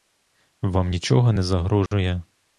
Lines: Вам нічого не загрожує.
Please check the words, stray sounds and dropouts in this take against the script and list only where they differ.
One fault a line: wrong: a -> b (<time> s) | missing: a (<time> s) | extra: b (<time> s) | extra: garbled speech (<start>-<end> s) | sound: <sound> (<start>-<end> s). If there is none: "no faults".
sound: dropout (1.9-1.9 s)